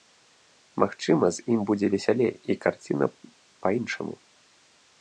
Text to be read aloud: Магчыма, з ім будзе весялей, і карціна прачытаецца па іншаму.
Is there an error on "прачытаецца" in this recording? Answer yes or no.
yes